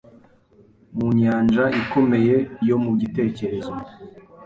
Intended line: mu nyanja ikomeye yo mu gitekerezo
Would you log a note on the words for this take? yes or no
no